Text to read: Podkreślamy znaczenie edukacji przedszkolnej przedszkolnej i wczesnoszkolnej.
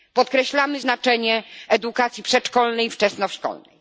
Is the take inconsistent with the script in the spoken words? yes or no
yes